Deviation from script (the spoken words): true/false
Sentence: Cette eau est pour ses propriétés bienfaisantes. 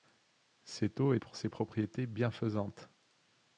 false